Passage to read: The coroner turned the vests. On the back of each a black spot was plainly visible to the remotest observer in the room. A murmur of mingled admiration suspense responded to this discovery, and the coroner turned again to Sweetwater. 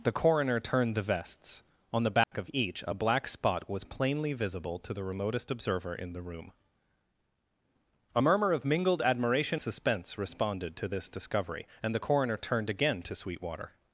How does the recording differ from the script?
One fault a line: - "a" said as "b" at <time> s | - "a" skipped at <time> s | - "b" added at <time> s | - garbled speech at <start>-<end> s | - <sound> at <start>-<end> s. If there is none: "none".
- dropout at 2.2-2.3 s